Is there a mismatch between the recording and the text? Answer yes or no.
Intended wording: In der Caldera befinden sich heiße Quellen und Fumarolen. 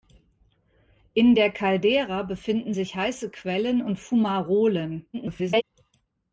yes